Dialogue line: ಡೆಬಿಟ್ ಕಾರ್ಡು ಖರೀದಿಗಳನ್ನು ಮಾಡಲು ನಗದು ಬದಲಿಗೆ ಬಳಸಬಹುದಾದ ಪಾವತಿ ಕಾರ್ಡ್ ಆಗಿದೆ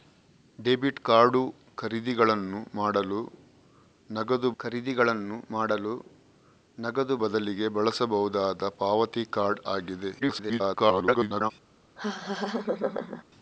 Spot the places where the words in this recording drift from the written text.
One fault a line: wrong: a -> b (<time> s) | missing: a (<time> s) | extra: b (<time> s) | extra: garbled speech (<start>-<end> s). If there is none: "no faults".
extra: ಖರೀದಿಗಳನ್ನು ಮಾಡಲು ನಗದು (4.6 s)
extra: garbled speech (10.2-11.5 s)